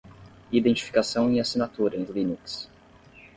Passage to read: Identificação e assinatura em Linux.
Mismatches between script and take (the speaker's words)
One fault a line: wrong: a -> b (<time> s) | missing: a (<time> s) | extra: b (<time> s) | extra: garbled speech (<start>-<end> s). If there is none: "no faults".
no faults